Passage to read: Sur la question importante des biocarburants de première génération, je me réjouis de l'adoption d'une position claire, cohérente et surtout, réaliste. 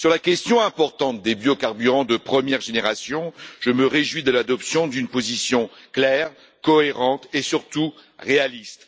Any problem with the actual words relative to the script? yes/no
no